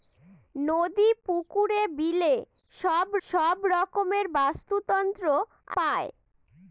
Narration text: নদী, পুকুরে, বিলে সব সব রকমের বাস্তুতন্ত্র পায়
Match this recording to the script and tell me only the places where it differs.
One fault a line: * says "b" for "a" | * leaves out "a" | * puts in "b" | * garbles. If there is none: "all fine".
all fine